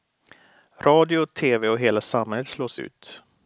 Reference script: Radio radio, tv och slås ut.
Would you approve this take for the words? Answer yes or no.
no